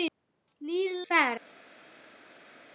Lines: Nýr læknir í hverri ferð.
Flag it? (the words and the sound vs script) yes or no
yes